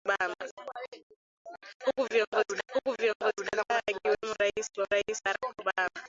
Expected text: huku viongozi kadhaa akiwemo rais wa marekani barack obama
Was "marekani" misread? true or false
true